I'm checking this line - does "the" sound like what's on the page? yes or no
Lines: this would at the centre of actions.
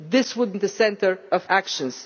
yes